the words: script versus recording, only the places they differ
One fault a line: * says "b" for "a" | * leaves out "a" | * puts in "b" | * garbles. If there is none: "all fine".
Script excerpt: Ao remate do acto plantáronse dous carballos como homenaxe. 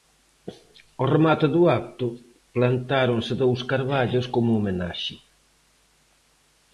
all fine